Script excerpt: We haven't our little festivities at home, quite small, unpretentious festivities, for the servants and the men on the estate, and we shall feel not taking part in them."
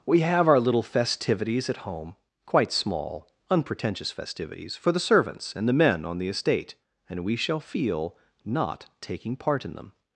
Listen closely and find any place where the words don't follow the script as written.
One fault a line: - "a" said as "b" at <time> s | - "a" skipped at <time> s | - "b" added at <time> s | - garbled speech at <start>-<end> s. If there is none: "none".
- "haven't" said as "have" at 0.2 s